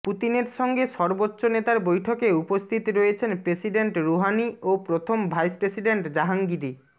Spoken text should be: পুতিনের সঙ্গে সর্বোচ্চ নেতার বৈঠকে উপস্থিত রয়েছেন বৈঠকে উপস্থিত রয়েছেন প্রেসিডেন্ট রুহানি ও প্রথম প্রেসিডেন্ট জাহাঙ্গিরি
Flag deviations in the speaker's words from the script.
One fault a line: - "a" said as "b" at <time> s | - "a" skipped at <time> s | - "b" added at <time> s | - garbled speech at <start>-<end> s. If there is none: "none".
- "বৈঠকে উপস্থিত রয়েছেন" skipped at 3.3 s
- "ভাইস" added at 5.3 s